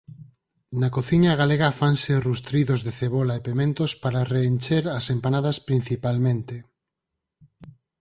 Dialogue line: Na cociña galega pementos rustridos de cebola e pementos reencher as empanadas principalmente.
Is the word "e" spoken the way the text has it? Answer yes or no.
yes